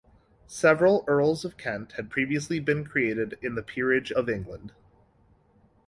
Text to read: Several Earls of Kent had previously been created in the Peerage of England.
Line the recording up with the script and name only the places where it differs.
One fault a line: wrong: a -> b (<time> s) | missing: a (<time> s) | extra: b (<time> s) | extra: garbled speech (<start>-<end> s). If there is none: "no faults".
no faults